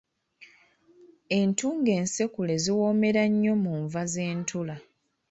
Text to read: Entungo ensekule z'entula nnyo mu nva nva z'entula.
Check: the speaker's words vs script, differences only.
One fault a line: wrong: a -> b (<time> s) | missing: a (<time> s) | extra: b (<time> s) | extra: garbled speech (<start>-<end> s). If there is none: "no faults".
wrong: z'entula -> ziwoomera (2.6 s)
missing: nva (4.0 s)